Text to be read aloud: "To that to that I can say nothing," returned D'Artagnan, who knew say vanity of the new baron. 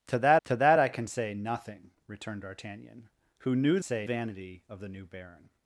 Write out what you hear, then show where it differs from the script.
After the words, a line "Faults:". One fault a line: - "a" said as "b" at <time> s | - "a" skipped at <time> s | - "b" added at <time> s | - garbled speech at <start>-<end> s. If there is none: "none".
"To that to that I can say nothing," returned D'Artagnan, who knew say vanity of the new baron.
Faults:
none